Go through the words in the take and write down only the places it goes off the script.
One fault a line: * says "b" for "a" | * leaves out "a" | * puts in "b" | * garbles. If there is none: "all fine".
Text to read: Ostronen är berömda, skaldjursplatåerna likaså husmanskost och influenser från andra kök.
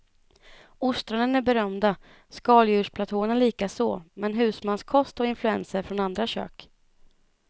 * puts in "men"